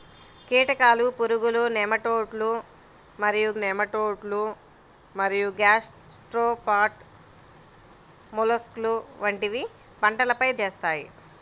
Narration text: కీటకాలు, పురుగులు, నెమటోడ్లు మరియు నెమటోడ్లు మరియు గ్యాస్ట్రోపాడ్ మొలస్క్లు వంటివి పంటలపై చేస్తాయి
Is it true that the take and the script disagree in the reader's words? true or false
false